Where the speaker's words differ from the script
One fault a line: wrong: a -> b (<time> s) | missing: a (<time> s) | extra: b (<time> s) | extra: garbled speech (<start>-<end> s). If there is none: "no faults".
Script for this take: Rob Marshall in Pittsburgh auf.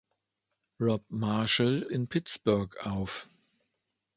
no faults